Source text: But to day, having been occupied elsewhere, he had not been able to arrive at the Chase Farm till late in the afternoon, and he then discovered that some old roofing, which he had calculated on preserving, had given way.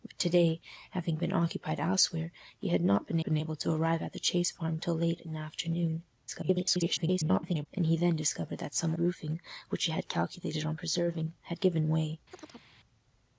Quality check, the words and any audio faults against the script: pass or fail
fail